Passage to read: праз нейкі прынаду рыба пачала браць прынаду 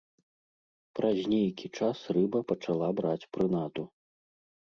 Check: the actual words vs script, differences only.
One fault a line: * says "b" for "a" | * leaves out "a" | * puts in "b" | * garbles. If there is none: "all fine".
* says "час" for "прынаду"